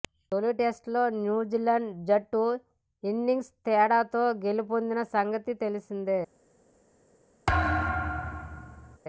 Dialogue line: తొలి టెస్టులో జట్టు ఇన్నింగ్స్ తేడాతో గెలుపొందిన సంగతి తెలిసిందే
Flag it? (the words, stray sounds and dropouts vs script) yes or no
yes